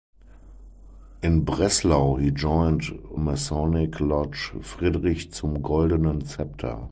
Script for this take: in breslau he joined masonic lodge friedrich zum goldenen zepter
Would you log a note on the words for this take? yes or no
no